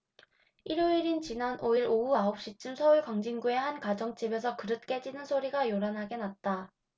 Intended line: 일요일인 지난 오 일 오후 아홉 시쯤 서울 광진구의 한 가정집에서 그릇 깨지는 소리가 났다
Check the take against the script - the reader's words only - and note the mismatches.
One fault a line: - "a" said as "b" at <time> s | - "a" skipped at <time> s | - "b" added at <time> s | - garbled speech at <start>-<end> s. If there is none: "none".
- "요란하게" added at 5.7 s